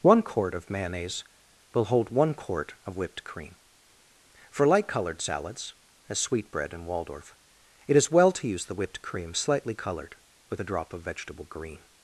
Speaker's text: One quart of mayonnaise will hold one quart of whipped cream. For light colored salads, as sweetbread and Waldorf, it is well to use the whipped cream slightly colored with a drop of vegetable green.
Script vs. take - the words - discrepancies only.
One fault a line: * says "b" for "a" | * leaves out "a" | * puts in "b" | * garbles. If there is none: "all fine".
all fine